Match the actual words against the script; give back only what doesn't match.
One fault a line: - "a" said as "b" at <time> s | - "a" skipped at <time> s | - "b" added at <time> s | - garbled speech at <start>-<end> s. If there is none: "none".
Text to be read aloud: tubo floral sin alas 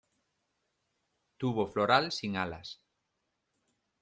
none